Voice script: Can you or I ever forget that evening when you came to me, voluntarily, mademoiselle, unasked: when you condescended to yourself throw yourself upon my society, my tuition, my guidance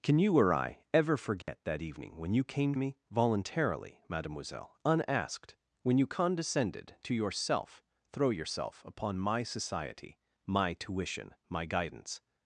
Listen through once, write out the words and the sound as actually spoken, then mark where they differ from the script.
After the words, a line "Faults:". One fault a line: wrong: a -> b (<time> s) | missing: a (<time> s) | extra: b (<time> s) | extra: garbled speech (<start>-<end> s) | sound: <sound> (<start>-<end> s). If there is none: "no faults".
Can you or I ever forget that evening when you came me, voluntarily, mademoiselle, unasked: when you condescended to yourself throw yourself upon my society, my tuition, my guidance
Faults:
sound: dropout (1.4-1.5 s)
missing: to (2.7 s)